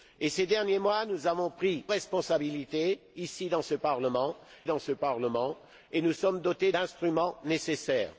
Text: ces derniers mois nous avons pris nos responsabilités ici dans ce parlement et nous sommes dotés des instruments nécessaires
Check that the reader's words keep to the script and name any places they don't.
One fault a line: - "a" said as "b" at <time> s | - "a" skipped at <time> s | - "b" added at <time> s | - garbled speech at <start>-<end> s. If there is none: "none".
- "nos" skipped at 1.8 s
- "dans ce parlement" added at 4.7 s
- "des" skipped at 6.7 s